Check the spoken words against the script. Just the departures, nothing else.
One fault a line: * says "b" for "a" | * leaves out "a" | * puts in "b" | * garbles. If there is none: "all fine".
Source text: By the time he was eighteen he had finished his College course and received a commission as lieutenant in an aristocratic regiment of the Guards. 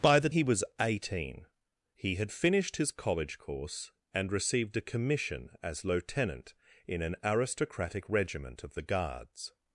* leaves out "time"